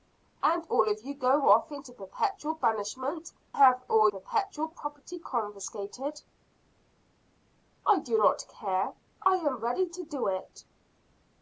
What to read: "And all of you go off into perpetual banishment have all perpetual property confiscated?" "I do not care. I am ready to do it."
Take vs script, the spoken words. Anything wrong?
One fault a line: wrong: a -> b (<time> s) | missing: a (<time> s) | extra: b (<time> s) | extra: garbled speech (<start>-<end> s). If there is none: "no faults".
no faults